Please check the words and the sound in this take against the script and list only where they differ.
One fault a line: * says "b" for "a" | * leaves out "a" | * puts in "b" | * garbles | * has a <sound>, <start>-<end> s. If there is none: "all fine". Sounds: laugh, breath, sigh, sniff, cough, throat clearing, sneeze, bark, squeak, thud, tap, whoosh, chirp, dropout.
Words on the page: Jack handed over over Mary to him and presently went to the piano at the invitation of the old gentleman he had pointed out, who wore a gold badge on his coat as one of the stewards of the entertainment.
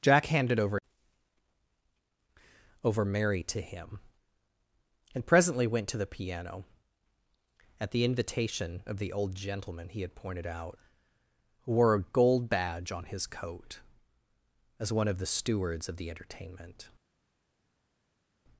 all fine